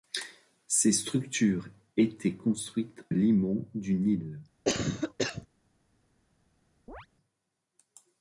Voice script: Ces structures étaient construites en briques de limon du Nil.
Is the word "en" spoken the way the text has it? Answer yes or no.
no